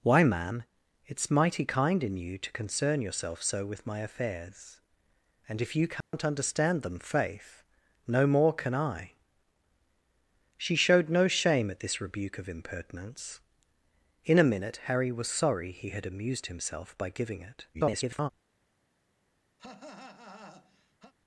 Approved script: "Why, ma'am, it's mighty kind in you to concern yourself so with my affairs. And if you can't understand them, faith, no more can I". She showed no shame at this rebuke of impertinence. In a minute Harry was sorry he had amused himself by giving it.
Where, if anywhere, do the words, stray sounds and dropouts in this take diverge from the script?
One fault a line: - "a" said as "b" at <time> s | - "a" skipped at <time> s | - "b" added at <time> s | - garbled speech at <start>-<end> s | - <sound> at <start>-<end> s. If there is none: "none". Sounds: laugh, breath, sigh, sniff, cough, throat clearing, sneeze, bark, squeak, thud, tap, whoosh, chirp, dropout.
- dropout at 6.0-6.1 s
- garbled speech at 17.7-18.3 s
- cough at 19.6-21.1 s